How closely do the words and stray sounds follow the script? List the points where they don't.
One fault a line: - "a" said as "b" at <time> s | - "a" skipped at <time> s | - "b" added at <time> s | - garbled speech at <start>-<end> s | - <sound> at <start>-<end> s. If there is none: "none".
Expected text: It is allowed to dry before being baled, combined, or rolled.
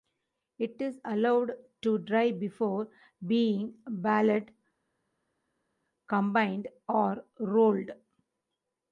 none